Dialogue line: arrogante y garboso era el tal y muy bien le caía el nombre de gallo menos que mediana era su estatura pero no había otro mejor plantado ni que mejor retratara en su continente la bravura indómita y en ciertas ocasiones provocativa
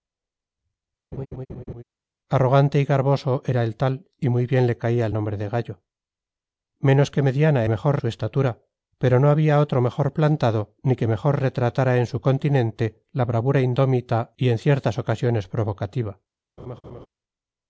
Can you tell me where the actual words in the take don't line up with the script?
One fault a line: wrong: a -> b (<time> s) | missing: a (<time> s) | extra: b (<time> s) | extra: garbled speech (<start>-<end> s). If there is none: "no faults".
wrong: era -> mejor (7.7 s)